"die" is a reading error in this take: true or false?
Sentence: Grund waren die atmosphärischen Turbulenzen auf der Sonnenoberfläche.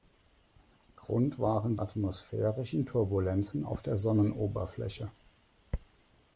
true